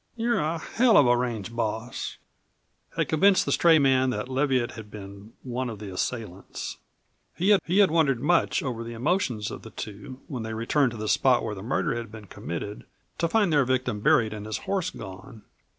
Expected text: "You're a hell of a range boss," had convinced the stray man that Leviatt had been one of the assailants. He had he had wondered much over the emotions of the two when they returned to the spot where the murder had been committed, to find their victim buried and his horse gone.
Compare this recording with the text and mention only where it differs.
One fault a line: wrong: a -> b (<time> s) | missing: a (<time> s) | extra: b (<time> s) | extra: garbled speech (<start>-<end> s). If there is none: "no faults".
no faults